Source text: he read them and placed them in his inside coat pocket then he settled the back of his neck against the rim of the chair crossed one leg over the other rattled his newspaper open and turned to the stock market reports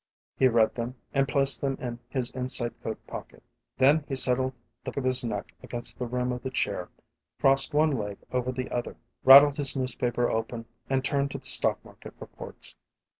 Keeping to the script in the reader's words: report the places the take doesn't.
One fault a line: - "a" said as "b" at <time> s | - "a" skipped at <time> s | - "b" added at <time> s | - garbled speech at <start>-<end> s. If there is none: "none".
- "back" skipped at 4.9 s